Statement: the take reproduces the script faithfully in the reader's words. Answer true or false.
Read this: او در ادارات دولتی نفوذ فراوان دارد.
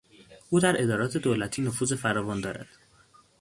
true